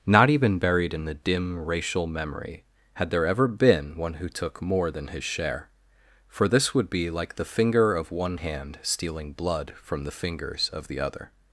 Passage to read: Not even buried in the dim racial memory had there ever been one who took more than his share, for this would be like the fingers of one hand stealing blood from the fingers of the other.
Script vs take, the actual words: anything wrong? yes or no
yes